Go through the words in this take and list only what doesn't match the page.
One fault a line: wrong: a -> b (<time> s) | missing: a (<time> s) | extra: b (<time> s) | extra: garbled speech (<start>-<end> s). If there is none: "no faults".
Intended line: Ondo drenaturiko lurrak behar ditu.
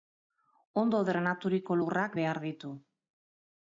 no faults